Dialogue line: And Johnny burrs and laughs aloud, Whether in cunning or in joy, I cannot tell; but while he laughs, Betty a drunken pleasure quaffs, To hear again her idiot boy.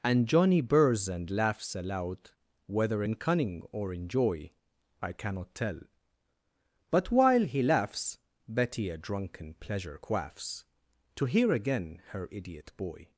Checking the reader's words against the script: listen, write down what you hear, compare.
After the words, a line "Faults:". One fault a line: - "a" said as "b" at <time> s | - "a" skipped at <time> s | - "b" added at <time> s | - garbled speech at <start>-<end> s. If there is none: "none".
And Johnny burrs and laughs aloud, Whether in cunning or in joy, I cannot tell; but while he laughs, Betty a drunken pleasure quaffs, To hear again her idiot boy.
Faults:
none